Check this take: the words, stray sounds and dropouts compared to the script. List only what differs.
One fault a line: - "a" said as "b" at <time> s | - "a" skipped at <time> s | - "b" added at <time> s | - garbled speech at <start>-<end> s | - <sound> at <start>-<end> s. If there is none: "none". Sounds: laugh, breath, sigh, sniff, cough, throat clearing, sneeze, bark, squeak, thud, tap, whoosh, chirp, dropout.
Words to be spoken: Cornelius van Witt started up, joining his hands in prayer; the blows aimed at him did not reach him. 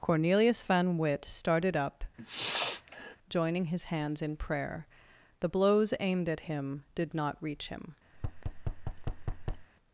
- sniff at 2.2-3.2 s
- thud at 8.1-9.7 s